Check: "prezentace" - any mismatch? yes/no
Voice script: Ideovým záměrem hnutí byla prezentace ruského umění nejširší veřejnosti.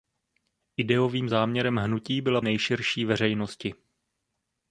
yes